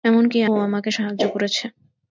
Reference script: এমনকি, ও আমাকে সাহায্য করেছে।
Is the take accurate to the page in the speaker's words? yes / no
yes